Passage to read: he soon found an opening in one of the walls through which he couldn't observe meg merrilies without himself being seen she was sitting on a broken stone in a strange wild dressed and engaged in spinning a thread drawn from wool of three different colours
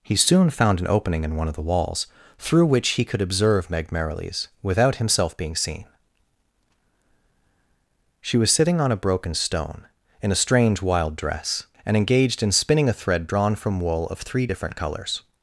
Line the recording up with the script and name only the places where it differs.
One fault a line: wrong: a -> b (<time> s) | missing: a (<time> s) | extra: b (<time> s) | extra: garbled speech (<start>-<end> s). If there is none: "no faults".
wrong: couldn't -> could (3.0 s)
wrong: dressed -> dress (11.2 s)